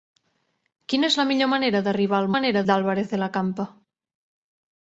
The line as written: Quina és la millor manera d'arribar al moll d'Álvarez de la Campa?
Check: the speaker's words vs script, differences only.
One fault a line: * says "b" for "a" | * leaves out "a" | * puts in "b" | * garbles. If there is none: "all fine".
* says "manera" for "moll"